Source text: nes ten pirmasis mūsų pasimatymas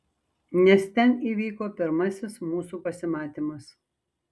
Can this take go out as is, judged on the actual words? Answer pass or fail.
fail